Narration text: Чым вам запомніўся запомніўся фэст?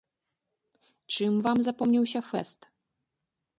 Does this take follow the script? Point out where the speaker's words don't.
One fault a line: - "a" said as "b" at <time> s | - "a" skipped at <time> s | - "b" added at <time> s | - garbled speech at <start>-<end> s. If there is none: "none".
- "запомніўся" skipped at 2.2 s